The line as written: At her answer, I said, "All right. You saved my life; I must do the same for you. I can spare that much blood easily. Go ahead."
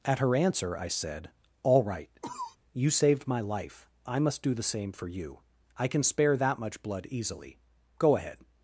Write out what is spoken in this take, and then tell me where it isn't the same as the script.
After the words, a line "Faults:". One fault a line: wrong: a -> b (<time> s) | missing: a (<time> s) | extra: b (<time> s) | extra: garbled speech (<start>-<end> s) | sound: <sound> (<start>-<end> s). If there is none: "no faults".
At her answer, I said, "All right. You saved my life; I must do the same for you. I can spare that much blood easily. Go ahead."
Faults:
sound: cough (2.2-2.6 s)